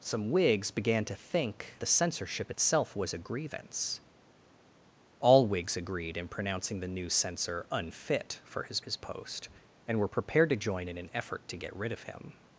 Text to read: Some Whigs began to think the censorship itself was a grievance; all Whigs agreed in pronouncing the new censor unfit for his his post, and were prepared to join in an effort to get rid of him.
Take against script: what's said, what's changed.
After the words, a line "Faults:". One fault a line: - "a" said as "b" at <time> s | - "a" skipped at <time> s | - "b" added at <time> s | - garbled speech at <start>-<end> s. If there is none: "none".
Some Whigs began to think the censorship itself was a grievance; all Whigs agreed in pronouncing the new censor unfit for his his post, and were prepared to join in an effort to get rid of him.
Faults:
none